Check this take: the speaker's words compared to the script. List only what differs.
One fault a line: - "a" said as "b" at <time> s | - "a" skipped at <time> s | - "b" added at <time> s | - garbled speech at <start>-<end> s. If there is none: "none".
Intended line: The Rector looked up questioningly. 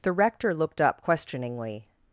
none